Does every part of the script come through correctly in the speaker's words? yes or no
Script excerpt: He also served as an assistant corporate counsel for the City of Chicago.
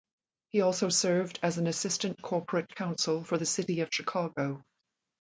yes